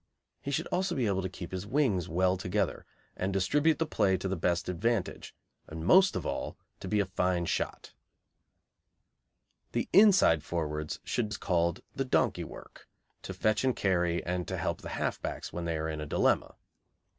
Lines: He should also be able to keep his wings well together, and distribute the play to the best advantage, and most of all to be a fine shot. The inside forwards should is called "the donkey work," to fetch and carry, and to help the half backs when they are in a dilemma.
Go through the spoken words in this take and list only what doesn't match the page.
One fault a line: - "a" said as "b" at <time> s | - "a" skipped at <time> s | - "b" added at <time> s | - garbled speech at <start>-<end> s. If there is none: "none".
none